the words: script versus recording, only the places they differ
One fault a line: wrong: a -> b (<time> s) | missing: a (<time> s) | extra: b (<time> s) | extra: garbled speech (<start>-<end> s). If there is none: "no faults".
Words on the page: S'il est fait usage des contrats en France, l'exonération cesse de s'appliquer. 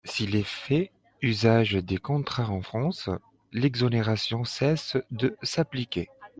no faults